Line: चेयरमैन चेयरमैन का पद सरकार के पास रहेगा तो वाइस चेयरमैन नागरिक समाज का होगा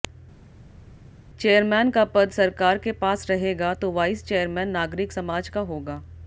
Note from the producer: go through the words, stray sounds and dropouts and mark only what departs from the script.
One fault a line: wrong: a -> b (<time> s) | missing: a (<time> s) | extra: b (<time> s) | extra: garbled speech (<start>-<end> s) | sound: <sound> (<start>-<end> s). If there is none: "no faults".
missing: चेयरमैन (1.9 s)